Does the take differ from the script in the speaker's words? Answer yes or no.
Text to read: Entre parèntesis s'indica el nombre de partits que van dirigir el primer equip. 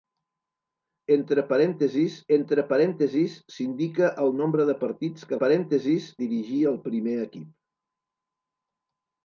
yes